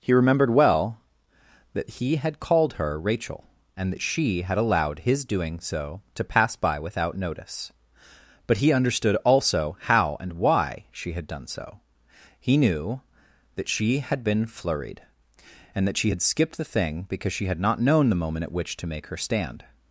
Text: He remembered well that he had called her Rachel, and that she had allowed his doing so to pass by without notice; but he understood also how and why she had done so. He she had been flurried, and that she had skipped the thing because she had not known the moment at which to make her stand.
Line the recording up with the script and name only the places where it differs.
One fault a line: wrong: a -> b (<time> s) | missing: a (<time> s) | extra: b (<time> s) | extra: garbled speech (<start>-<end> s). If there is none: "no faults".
extra: knew that (12.6 s)